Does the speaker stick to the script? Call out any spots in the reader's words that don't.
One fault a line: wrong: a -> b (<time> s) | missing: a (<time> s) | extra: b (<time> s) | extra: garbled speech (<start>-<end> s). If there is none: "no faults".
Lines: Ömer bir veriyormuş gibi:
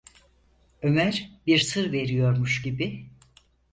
extra: sır (1.6 s)